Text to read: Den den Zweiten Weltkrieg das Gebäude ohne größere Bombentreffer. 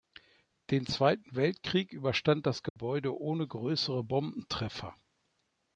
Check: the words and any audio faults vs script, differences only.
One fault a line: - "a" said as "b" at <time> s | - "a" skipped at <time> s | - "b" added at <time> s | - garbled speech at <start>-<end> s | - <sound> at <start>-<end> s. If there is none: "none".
- "den" skipped at 0.9 s
- "überstand" added at 1.9 s
- dropout at 2.7-2.8 s